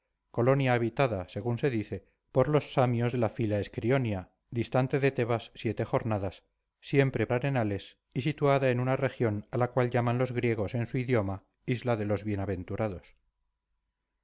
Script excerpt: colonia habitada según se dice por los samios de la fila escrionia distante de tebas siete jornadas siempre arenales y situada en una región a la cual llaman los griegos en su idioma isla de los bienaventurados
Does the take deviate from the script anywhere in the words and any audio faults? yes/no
no